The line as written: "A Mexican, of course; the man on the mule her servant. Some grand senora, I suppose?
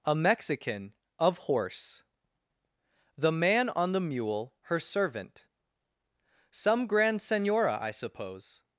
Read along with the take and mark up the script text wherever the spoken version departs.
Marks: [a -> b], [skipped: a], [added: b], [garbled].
"A Mexican, of [course; -> horse] the man on the mule her servant. Some grand senora, I suppose?